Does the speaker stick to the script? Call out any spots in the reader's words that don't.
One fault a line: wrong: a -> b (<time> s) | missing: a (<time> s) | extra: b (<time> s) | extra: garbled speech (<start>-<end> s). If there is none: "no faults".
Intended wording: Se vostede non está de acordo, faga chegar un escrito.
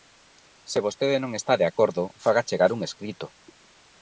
no faults